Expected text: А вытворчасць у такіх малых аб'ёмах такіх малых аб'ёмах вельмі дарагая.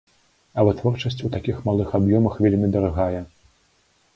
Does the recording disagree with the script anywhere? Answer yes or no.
yes